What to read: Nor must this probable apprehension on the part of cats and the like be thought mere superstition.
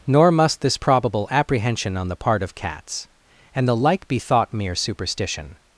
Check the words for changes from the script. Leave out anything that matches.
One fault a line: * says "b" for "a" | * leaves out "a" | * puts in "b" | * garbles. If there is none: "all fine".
all fine